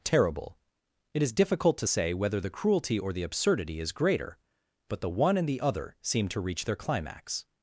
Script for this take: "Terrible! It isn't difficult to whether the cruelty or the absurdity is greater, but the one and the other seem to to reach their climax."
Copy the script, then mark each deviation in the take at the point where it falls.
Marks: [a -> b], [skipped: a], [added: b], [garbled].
"Terrible! It [isn't -> is] difficult to [added: say] whether the cruelty or the absurdity is greater, but the one and the other seem to [skipped: to] reach their climax."